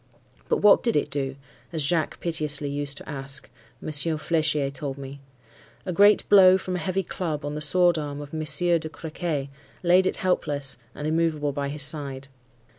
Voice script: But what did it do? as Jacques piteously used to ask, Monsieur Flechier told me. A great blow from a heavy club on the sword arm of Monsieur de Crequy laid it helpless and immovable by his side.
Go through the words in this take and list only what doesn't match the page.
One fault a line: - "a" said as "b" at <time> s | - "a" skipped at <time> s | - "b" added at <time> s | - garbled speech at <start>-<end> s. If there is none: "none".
none